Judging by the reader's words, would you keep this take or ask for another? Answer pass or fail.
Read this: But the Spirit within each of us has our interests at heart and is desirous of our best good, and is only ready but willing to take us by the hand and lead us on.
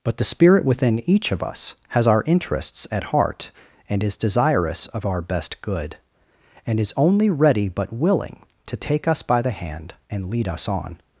pass